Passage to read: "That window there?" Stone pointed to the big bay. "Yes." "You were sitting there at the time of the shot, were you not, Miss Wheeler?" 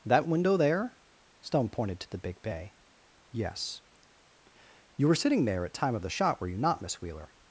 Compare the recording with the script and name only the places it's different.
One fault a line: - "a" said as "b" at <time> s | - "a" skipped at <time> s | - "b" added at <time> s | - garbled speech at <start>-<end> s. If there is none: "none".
- "the" skipped at 5.7 s